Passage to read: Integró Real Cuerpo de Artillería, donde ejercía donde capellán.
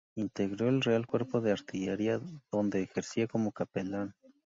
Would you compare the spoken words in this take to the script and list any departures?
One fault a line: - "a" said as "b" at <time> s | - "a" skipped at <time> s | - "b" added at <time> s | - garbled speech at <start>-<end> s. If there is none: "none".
- "el" added at 0.7 s
- "donde" said as "como" at 3.3 s